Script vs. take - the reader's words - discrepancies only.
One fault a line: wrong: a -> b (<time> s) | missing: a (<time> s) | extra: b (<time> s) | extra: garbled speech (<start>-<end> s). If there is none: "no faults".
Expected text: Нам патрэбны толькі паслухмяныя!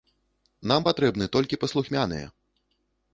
no faults